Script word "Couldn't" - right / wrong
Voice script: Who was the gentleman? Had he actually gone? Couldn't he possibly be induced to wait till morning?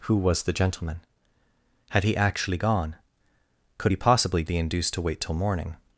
wrong